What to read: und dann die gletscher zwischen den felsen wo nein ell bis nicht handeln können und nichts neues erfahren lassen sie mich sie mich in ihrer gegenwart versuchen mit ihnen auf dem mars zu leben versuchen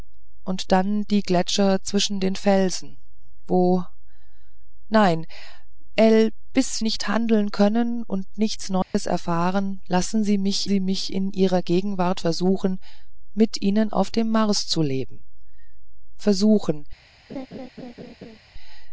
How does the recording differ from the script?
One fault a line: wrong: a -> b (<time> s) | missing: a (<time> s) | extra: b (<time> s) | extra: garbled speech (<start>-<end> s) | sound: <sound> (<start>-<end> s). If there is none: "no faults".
sound: dropout (8.8-8.9 s)
sound: laugh (17.3-18.4 s)